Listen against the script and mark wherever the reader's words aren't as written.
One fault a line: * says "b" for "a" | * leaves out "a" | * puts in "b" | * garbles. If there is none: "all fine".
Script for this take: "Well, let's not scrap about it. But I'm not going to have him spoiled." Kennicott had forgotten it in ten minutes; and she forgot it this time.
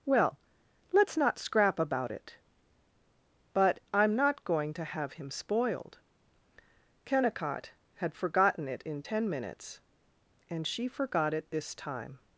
all fine